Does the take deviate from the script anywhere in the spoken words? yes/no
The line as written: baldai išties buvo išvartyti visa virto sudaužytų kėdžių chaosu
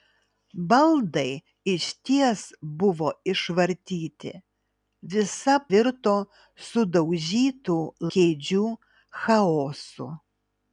no